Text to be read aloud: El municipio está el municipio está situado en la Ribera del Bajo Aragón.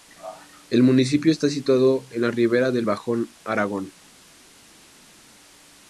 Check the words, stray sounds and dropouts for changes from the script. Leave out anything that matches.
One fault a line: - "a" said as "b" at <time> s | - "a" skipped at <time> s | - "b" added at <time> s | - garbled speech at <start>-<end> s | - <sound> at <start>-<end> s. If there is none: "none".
- "el municipio está" skipped at 1.5 s